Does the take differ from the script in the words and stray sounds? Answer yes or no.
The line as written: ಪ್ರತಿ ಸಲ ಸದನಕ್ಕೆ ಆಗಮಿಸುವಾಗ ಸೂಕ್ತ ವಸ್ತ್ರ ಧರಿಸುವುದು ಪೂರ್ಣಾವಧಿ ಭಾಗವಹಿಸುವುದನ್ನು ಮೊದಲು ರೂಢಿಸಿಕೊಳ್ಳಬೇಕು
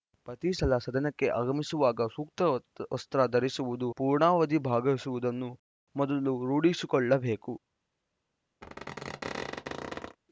yes